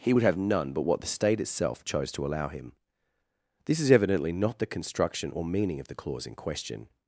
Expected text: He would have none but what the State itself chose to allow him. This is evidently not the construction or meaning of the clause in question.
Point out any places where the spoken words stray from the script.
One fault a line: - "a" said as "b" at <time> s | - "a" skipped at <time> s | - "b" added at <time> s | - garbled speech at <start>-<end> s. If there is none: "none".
none